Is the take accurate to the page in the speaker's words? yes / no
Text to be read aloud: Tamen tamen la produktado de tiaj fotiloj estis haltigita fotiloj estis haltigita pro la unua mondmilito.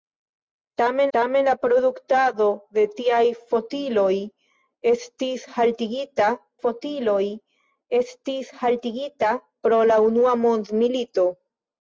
yes